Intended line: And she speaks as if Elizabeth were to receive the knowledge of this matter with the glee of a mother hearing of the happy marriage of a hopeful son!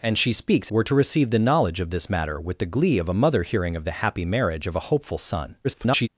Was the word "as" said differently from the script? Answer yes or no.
yes